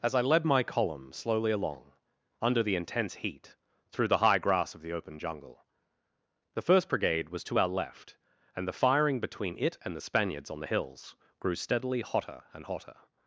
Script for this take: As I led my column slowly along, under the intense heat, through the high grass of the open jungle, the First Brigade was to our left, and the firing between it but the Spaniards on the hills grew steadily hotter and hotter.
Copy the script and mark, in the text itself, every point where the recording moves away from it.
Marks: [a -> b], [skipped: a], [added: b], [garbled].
As I led my column slowly along, under the intense heat, through the high grass of the open jungle, the First Brigade was to our left, and the firing between it [but -> and] the Spaniards on the hills grew steadily hotter and hotter.